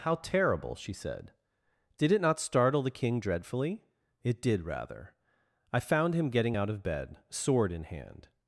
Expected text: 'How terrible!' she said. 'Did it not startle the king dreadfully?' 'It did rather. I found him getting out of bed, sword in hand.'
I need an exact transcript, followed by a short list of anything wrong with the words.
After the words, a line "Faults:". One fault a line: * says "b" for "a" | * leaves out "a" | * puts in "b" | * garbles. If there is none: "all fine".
'How terrible!' she said. 'Did it not startle the king dreadfully?' 'It did rather. I found him getting out of bed, sword in hand.'
Faults:
all fine